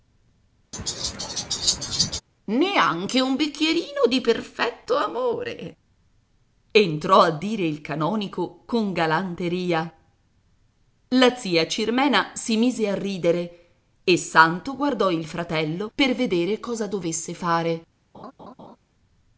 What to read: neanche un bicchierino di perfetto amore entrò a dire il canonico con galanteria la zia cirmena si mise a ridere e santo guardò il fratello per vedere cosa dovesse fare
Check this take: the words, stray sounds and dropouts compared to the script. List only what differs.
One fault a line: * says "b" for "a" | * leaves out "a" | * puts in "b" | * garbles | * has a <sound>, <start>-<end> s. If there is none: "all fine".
* has a laugh, 0.7-2.2 s
* has a laugh, 18.1-18.8 s